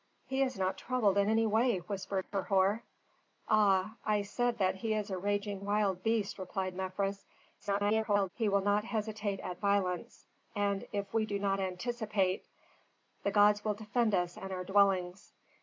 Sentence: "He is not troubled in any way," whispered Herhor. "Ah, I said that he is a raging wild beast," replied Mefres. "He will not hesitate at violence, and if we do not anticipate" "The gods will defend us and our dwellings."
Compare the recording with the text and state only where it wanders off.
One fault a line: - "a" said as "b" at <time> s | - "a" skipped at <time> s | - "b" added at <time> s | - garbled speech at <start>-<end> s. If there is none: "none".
- garbled speech at 7.6-8.3 s